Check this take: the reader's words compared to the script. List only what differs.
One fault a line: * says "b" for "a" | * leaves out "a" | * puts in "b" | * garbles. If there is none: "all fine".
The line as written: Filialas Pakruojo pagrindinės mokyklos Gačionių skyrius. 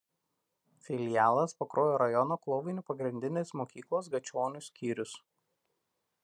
* puts in "rajono Klovainių"